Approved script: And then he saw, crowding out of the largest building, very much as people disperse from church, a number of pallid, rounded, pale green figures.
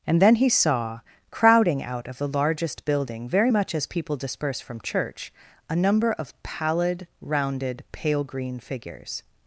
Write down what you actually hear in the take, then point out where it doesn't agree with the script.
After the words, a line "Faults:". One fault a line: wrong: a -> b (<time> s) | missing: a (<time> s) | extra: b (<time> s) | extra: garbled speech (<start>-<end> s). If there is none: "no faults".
And then he saw, crowding out of the largest building, very much as people disperse from church, a number of pallid, rounded, pale green figures.
Faults:
no faults